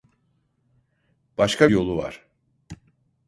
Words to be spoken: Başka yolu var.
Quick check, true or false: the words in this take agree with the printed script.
true